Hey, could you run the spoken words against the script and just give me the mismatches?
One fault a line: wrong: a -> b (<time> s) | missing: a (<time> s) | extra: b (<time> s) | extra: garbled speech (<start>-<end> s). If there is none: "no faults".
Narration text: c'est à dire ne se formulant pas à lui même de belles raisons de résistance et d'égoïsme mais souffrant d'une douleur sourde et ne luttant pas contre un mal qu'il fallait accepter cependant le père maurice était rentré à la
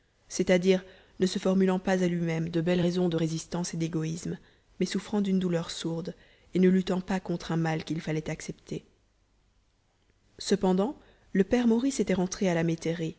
no faults